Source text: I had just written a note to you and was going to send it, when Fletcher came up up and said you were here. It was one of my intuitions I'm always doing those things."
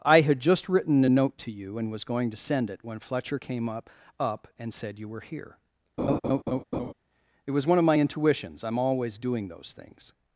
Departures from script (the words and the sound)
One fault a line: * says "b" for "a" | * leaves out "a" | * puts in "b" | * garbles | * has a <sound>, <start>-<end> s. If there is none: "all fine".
* has a laugh, 6.0-6.9 s